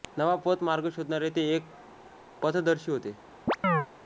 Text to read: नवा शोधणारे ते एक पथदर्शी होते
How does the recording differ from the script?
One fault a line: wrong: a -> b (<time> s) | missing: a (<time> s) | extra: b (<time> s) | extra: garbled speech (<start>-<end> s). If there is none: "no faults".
extra: पथ मार्ग (0.5 s)